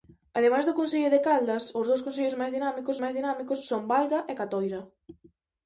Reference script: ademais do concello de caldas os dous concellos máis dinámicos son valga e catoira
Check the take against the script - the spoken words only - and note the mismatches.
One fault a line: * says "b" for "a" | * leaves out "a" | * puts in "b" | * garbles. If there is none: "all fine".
* puts in "máis dinámicos"